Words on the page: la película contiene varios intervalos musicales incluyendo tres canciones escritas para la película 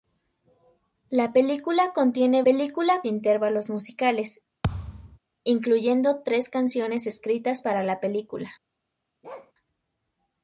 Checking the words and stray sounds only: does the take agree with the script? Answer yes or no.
no